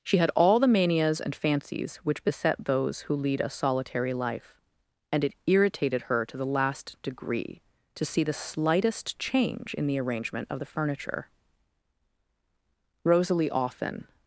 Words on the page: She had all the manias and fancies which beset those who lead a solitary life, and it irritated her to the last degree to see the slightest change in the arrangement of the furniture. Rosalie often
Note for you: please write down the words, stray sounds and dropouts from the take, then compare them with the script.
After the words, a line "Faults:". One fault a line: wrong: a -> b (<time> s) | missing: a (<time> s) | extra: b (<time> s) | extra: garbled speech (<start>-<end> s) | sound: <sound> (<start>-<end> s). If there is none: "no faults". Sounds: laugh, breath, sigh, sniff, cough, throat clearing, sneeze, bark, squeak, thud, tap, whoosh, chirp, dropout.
She had all the manias and fancies which beset those who lead a solitary life, and it irritated her to the last degree to see the slightest change in the arrangement of the furniture. Rosalie often
Faults:
no faults